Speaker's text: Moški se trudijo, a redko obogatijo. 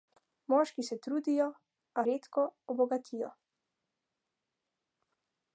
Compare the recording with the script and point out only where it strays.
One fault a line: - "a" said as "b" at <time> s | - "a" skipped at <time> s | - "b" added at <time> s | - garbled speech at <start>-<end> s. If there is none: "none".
none